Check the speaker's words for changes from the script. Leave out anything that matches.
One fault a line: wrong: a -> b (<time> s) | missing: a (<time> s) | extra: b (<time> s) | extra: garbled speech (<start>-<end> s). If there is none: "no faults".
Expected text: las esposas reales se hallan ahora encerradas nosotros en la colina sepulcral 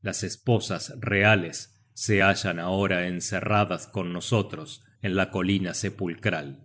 extra: con (3.9 s)